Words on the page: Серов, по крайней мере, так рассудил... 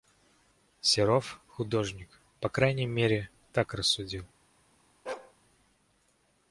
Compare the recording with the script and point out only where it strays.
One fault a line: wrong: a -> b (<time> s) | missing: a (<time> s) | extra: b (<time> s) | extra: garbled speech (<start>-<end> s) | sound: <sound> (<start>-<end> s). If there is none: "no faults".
extra: художник (1.5 s)
sound: bark (5.1-5.3 s)